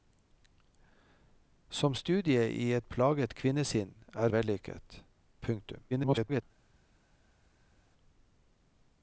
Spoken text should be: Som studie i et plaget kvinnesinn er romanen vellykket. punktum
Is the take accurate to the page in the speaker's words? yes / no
no